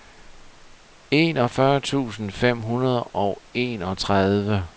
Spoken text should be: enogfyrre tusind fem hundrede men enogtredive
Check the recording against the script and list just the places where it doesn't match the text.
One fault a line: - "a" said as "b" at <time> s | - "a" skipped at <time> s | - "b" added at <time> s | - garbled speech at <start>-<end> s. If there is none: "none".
- "men" said as "og" at 3.0 s